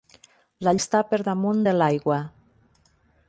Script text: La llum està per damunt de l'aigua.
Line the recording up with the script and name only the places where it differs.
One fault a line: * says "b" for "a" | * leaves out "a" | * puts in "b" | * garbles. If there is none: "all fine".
* leaves out "llum"